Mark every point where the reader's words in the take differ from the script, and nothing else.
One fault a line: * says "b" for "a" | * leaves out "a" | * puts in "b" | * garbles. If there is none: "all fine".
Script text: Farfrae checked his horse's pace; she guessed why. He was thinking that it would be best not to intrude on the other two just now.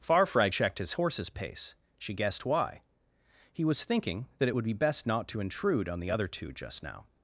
all fine